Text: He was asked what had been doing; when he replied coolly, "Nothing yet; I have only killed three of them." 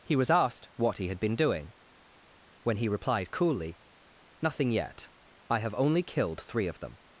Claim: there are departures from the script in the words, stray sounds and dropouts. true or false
true